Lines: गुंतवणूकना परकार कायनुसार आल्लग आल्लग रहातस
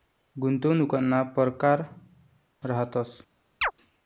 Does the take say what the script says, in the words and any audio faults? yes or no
no